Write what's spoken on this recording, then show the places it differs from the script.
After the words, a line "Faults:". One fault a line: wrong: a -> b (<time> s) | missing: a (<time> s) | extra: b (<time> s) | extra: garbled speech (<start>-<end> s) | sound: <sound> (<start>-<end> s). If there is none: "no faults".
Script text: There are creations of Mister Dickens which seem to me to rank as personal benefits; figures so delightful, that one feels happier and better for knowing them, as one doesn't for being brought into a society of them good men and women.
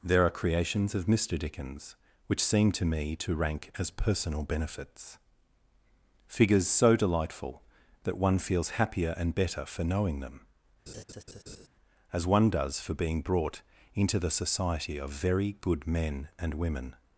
There are creations of Mister Dickens which seem to me to rank as personal benefits; figures so delightful, that one feels happier and better for knowing them, as one does for being brought into the society of very good men and women.
Faults:
sound: laugh (10.9-11.7 s)
wrong: doesn't -> does (12.5 s)
wrong: a -> the (14.2 s)
wrong: them -> very (15.1 s)